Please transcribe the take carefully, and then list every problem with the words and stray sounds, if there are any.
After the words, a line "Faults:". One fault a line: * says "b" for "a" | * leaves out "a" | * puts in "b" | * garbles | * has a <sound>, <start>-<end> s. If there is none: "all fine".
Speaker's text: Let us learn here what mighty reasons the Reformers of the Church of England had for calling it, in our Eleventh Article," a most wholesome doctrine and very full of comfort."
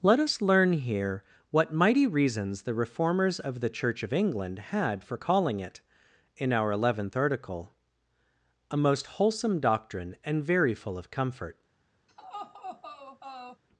Let us learn here what mighty reasons the Reformers of the Church of England had for calling it, in our Eleventh Article," a most wholesome doctrine and very full of comfort."
Faults:
* has a laugh, 12.1-13.6 s